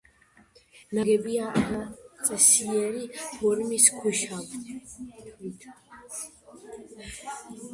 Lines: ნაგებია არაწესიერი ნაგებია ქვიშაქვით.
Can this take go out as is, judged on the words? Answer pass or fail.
fail